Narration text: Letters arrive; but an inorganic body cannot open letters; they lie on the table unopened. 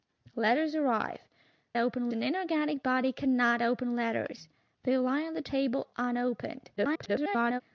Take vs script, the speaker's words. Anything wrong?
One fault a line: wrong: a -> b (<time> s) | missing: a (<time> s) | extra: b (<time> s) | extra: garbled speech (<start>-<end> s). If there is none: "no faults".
wrong: but -> open (1.8 s)
extra: garbled speech (6.8-7.6 s)